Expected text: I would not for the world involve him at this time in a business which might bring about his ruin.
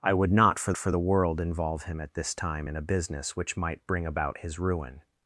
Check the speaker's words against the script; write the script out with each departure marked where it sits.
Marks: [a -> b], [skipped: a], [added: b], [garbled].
I would not for [added: for] the world involve him at this time in a business which might bring about his ruin.